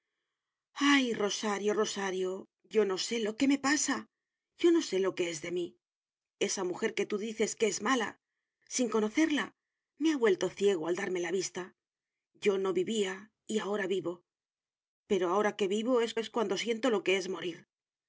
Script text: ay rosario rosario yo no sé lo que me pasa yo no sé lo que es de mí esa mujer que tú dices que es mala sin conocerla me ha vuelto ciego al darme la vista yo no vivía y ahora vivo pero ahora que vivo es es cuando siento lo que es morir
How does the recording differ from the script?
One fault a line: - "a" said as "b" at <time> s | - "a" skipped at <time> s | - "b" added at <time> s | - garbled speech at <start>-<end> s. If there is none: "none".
none